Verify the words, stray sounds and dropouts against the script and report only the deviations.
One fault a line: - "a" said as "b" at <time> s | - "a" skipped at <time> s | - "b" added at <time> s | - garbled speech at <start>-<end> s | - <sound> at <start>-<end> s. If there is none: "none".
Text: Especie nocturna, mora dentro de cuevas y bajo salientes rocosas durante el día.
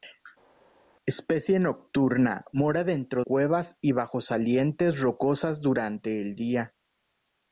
- "de" skipped at 3.2 s